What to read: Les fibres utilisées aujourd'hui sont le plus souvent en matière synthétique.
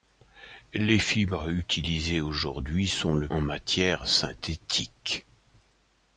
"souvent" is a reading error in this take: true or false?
true